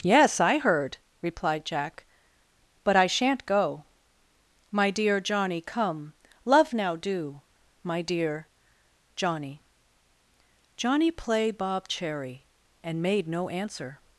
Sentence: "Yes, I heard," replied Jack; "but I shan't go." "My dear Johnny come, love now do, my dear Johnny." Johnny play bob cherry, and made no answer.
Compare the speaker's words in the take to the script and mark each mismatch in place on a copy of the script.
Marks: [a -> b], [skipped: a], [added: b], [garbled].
"Yes, I heard," replied Jack; "but I shan't go." "My dear Johnny come, love now do, my dear Johnny." Johnny play bob cherry, and made no answer.